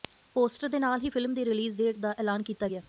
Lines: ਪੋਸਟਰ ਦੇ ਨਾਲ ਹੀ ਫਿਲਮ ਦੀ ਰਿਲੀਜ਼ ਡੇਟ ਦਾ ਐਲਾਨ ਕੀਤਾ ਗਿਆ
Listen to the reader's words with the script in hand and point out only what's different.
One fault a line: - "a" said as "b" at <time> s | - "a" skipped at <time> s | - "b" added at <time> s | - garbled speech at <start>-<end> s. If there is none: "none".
none